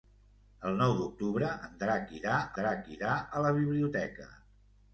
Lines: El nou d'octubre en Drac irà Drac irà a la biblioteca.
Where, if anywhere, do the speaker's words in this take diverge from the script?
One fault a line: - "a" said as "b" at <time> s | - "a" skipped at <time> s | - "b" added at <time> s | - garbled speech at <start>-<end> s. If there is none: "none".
none